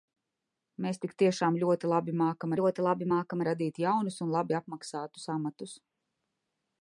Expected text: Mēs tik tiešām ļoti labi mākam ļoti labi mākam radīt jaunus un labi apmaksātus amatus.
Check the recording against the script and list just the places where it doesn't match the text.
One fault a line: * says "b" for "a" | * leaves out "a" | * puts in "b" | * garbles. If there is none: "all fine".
all fine